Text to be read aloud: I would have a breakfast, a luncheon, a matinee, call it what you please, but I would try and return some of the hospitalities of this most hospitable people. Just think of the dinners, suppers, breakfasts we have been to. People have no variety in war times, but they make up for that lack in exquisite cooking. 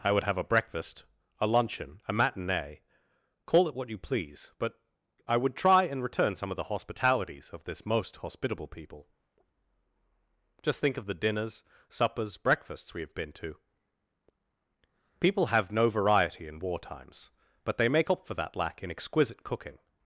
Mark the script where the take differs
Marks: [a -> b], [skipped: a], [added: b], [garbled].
I would have a breakfast, a luncheon, a matinee, call it what you please, but I would try and return some of the hospitalities of this most hospitable people. Just think of the dinners, suppers, breakfasts we have been to. People have no variety in war times, but they make up for that lack in exquisite cooking.